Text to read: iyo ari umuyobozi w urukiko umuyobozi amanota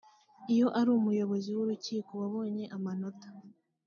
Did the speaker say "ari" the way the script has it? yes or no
yes